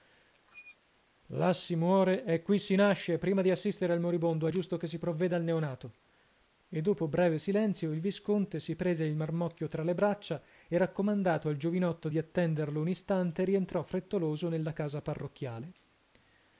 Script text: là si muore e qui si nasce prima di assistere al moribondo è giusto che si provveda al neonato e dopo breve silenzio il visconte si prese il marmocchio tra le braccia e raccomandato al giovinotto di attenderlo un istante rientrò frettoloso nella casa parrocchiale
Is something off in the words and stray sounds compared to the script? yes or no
yes